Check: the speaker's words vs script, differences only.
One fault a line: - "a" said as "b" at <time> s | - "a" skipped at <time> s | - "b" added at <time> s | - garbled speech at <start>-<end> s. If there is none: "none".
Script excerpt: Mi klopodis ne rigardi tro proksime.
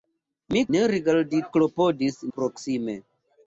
- "klopodis" skipped at 0.6 s
- "tro" said as "klopodis" at 1.6 s